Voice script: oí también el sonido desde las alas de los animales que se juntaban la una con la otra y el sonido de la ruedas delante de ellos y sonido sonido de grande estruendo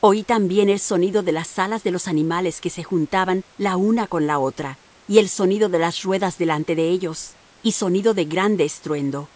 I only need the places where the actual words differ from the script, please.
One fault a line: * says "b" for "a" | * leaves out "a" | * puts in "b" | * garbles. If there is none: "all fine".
* says "de" for "desde"
* says "las" for "la"
* leaves out "sonido"